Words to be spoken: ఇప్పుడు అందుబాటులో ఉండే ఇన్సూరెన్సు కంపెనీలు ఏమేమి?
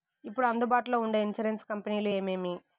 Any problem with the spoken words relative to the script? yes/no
no